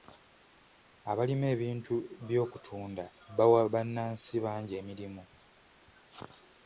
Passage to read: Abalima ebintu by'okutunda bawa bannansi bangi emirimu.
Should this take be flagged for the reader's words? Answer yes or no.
no